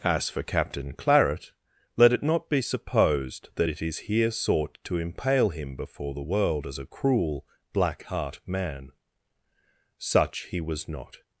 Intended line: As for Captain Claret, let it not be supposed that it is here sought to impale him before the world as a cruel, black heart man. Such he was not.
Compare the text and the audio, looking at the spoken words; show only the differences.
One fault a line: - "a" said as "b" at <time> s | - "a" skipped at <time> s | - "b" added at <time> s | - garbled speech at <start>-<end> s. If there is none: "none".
none